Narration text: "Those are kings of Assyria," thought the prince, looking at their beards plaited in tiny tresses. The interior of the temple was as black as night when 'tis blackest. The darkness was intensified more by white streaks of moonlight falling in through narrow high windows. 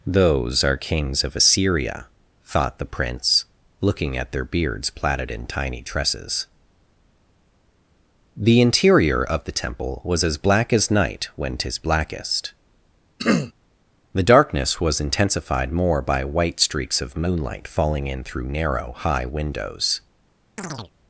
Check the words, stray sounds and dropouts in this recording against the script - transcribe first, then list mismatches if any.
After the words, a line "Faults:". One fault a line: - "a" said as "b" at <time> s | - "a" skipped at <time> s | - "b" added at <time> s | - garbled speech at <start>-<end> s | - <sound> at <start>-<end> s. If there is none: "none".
"Those are kings of Assyria," thought the prince, looking at their beards plaited in tiny tresses. The interior of the temple was as black as night when 'tis blackest. The darkness was intensified more by white streaks of moonlight falling in through narrow high windows.
Faults:
- throat clearing at 13.2-13.5 s
- chirp at 20.6-20.9 s